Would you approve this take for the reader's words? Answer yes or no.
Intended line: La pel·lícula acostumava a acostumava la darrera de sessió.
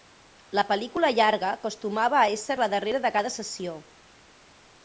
no